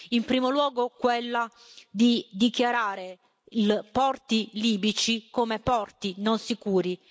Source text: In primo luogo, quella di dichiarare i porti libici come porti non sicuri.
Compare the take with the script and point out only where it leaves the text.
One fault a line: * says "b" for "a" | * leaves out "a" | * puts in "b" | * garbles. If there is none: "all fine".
all fine